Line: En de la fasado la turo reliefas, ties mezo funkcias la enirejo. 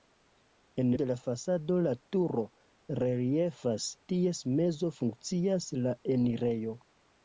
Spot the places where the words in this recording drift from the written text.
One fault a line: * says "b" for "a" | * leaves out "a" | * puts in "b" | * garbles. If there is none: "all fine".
all fine